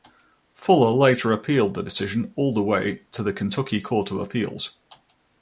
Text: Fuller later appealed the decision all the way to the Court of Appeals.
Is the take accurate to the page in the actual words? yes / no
no